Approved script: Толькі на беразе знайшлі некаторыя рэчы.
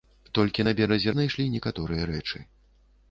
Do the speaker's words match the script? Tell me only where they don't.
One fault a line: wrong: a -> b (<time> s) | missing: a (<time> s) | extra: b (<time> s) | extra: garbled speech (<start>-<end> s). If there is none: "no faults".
no faults